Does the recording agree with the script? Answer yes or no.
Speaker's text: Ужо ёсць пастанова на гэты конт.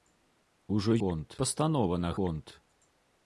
no